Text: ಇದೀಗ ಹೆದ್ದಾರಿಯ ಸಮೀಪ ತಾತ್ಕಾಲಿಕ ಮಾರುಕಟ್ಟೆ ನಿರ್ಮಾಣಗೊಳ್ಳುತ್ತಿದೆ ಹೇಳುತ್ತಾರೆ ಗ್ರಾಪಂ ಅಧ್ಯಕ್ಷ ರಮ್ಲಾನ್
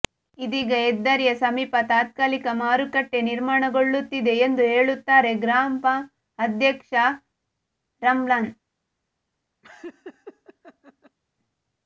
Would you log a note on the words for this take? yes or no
yes